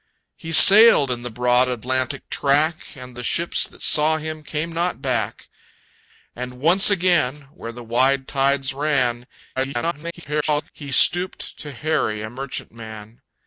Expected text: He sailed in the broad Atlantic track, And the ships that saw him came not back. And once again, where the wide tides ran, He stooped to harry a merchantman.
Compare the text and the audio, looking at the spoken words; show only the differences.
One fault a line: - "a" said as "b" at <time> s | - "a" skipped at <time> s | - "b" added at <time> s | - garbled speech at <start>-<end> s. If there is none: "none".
- garbled speech at 9.6-10.7 s